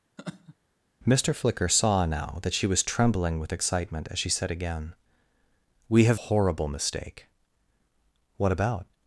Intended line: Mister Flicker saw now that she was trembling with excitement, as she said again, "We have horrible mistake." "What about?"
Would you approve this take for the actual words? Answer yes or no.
yes